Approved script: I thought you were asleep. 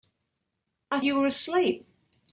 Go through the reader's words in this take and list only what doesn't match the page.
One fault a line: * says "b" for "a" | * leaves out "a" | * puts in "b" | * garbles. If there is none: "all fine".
* leaves out "thought"